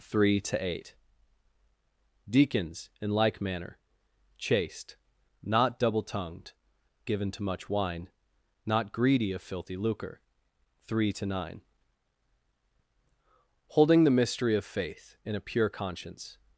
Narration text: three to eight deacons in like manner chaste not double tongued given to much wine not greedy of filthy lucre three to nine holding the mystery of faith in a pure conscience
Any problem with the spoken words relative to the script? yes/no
no